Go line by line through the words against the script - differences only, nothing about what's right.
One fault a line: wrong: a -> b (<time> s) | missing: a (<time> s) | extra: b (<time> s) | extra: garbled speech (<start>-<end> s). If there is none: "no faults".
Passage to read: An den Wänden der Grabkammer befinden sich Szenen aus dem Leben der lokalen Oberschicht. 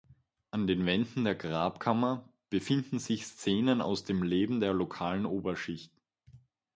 no faults